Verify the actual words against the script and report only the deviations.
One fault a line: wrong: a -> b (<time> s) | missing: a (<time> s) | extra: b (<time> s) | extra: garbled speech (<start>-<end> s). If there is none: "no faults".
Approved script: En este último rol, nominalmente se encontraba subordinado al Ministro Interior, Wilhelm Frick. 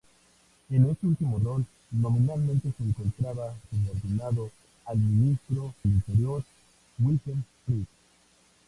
no faults